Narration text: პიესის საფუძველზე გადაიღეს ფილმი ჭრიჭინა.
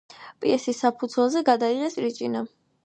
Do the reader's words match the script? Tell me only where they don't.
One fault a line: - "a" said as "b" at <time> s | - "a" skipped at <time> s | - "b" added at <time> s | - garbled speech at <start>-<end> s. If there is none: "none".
- "ფილმი" skipped at 2.0 s